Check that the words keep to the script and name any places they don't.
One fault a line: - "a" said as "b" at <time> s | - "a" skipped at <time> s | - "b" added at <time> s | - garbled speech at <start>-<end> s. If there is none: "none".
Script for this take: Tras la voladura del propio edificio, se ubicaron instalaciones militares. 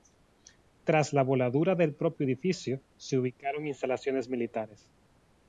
none